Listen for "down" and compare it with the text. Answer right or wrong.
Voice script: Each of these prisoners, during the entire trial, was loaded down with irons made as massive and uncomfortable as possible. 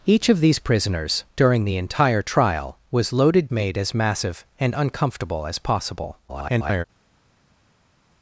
wrong